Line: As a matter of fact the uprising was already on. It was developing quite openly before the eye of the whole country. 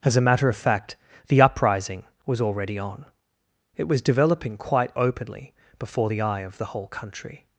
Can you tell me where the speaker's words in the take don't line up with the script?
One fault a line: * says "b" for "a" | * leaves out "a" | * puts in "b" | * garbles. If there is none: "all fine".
all fine